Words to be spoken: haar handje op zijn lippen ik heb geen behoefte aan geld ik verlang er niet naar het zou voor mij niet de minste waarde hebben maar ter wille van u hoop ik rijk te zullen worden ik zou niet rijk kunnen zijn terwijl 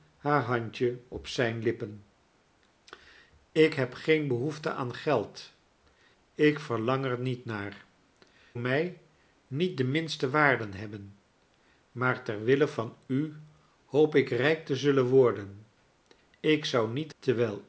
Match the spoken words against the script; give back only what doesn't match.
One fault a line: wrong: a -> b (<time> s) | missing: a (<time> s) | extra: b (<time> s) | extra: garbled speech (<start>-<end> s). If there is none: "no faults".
missing: het zou voor (7.8 s)
missing: rijk kunnen zijn (17.1 s)